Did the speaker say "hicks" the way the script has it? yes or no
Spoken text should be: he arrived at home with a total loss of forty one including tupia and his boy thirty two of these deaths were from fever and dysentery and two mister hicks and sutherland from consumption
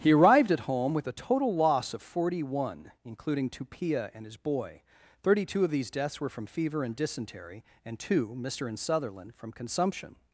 no